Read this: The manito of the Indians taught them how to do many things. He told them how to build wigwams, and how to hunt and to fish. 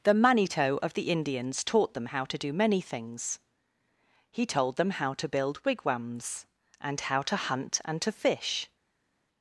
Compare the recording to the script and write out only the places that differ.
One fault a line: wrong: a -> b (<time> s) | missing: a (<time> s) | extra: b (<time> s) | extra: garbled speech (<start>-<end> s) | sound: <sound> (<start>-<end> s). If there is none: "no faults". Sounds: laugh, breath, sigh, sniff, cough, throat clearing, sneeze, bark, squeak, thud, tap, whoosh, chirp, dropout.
no faults